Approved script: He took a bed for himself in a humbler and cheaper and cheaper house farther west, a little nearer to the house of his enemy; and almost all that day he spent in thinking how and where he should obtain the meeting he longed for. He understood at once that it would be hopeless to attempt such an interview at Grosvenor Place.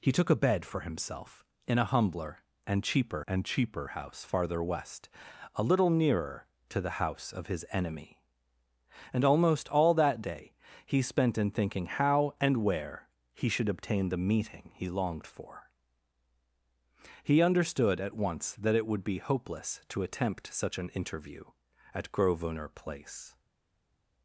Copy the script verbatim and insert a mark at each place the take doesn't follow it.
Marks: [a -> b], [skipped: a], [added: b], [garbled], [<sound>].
He took a bed for himself in a humbler and cheaper and cheaper house farther west, a little nearer to the house of his enemy; and almost all that day he spent in thinking how and where he should obtain the meeting he longed for. He understood at once that it would be hopeless to attempt such an interview at Grosvenor Place.